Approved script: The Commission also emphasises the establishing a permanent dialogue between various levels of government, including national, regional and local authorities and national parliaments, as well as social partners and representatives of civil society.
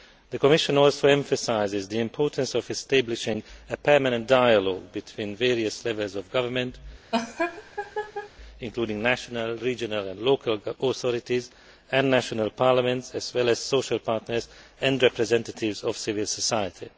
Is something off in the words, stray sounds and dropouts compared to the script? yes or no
yes